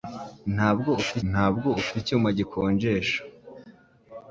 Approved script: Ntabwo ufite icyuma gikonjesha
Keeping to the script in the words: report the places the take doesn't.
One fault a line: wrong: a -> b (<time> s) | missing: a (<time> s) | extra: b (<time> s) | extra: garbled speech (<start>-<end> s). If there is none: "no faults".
extra: ntabwo ufite (1.3 s)